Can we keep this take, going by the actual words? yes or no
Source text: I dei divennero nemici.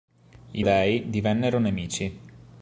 yes